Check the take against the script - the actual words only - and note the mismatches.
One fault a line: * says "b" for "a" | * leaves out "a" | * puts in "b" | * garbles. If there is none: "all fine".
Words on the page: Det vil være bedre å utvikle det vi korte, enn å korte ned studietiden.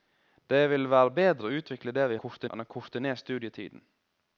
all fine